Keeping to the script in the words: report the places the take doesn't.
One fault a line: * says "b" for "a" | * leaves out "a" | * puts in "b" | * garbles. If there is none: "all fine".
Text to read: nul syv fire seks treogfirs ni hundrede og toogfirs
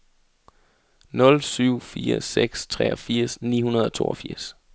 all fine